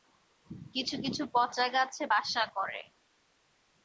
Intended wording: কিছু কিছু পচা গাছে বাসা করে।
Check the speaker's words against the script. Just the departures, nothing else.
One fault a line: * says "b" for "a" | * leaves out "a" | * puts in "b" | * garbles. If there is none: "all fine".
all fine